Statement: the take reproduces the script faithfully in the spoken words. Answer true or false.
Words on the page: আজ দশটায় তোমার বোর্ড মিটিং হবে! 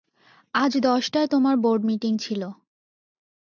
false